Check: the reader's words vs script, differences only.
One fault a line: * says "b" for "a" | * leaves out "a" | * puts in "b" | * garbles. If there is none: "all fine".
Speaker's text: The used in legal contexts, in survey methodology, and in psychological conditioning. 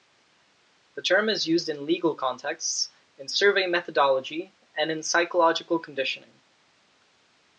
* puts in "term is"